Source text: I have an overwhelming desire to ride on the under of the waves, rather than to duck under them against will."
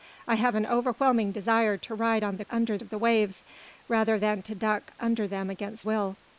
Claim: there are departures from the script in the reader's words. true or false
false